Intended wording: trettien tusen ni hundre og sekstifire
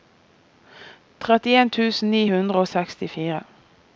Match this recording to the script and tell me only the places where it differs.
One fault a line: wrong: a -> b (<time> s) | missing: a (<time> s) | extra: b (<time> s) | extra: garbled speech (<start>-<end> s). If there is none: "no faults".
no faults